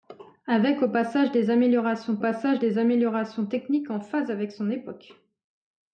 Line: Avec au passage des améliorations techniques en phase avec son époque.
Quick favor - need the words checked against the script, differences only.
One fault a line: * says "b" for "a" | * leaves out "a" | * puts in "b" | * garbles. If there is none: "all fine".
* puts in "passage des améliorations"